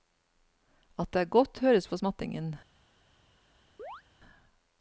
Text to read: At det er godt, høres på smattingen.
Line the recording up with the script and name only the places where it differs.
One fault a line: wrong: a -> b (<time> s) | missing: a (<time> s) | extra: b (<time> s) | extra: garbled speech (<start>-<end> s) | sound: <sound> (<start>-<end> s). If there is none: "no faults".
sound: chirp (3.8-4.0 s)